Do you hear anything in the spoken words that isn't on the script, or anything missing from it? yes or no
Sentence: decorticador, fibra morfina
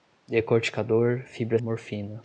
no